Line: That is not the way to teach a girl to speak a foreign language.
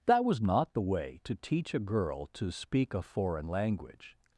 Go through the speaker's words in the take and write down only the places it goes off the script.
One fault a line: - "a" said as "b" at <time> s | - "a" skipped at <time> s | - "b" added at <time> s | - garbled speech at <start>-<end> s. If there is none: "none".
- "is" said as "was" at 0.2 s